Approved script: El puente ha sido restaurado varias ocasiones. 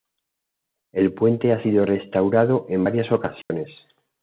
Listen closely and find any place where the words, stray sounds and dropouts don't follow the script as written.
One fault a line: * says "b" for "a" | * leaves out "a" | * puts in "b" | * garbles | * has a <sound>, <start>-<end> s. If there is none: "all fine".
* puts in "en"
* has a dropout, 3.4-3.5 s